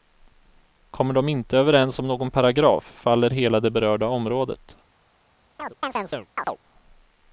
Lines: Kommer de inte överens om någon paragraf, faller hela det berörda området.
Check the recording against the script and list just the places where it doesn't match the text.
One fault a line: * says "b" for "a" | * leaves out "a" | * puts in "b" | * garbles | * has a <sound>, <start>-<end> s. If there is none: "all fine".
* has a chirp, 5.6-6.6 s